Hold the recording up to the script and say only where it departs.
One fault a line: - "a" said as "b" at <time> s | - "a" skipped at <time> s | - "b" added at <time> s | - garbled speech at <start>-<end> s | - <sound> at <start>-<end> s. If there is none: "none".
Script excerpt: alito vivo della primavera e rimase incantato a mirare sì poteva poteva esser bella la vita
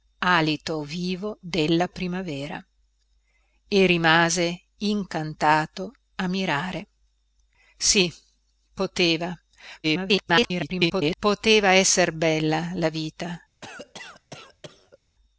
- garbled speech at 9.8-11.2 s
- cough at 13.6-15.0 s